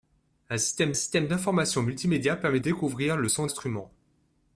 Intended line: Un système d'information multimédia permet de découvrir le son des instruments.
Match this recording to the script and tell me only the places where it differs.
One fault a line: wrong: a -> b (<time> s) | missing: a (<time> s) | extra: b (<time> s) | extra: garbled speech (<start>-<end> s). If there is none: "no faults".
extra: système (0.9 s)
missing: de (2.6 s)
missing: des (3.5 s)